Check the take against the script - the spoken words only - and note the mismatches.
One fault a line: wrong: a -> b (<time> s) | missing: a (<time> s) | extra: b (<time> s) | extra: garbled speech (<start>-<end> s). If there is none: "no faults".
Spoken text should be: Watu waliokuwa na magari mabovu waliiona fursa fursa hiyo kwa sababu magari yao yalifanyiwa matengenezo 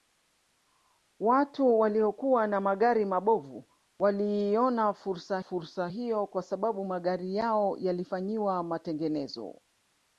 no faults